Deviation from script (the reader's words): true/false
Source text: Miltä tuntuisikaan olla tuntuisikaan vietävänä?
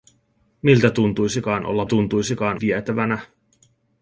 false